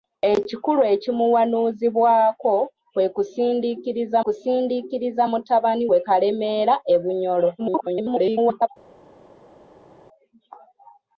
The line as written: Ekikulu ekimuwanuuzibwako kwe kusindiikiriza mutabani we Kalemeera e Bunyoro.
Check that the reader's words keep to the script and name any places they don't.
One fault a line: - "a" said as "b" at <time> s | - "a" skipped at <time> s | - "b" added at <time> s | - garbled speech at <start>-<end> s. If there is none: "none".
- "kusindiikiriza" added at 4.2 s
- garbled speech at 7.6-8.7 s